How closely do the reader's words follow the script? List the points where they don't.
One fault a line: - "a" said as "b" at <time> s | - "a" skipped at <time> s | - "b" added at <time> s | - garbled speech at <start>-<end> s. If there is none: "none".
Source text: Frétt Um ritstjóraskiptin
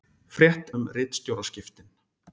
none